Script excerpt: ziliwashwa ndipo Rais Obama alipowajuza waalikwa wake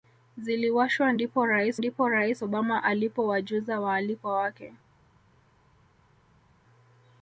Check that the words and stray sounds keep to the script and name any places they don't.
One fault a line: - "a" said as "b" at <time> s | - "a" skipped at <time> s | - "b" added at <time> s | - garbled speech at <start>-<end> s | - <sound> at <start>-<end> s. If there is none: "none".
- "ndipo Rais" added at 1.8 s